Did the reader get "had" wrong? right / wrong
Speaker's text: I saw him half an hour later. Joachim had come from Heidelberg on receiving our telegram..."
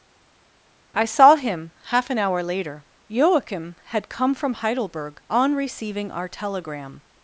right